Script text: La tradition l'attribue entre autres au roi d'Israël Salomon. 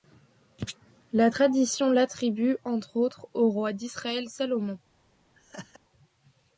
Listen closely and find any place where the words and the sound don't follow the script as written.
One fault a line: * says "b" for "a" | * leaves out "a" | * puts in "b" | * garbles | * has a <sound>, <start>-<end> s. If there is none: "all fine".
* has a laugh, 5.3-5.8 s